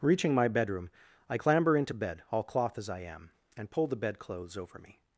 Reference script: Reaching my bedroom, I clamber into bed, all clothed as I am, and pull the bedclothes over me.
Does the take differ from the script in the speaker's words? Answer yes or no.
yes